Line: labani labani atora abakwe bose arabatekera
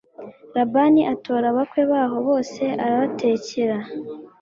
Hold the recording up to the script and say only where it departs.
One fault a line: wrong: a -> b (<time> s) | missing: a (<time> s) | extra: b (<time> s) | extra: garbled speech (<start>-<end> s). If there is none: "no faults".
missing: labani (1.0 s)
extra: baho (1.9 s)